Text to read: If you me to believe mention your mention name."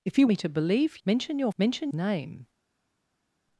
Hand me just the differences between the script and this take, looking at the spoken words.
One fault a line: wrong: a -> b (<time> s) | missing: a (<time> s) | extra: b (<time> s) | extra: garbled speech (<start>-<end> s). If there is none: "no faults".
no faults